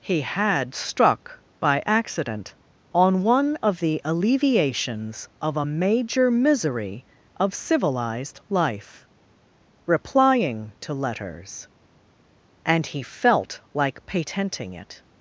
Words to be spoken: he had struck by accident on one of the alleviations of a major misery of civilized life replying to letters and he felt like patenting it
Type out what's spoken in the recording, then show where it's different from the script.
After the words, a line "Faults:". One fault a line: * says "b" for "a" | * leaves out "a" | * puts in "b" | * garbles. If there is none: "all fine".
he had struck by accident on one of the alleviations of a major misery of civilized life replying to letters and he felt like patenting it
Faults:
all fine